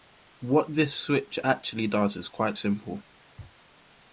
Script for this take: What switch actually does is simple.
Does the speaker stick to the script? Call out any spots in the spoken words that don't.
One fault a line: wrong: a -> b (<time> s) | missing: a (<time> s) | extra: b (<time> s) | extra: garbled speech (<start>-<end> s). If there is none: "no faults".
extra: this (0.7 s)
extra: quite (2.3 s)